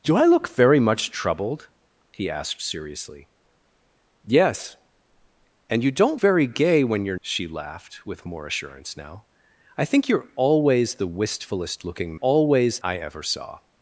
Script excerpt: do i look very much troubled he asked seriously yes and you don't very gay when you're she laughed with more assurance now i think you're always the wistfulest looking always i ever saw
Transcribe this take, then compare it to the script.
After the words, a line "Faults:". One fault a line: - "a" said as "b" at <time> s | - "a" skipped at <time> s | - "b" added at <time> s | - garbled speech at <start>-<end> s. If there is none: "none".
do i look very much troubled he asked seriously yes and you don't very gay when you're she laughed with more assurance now i think you're always the wistfulest looking always i ever saw
Faults:
none